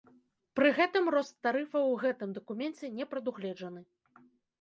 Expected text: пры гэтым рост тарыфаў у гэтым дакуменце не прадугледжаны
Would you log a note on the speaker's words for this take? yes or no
no